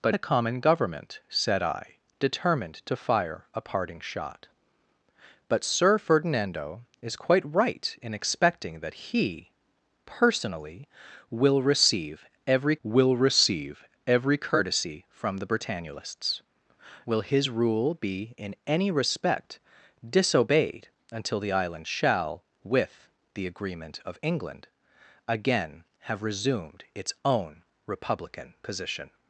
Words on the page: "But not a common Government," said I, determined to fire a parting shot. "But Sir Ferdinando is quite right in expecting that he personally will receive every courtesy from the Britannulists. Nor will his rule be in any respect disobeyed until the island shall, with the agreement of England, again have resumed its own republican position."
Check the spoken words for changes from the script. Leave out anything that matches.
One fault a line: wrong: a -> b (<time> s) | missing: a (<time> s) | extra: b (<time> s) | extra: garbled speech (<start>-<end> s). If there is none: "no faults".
missing: not (0.1 s)
extra: will receive every (12.8 s)
missing: Nor (16.4 s)